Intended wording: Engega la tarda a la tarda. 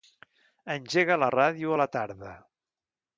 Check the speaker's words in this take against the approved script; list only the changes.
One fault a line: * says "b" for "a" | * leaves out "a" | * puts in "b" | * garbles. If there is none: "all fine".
* says "ràdio" for "tarda"